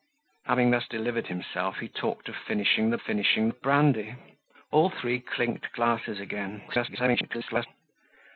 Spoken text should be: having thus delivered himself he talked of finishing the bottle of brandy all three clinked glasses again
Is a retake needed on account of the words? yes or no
yes